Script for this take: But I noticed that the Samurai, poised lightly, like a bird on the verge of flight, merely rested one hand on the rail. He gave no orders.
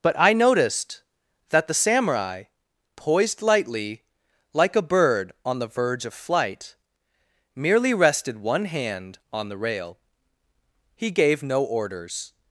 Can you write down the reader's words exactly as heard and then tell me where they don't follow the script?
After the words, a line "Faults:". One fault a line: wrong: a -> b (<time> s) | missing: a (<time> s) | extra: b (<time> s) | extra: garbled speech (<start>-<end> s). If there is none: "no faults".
But I noticed that the Samurai, poised lightly, like a bird on the verge of flight, merely rested one hand on the rail. He gave no orders.
Faults:
no faults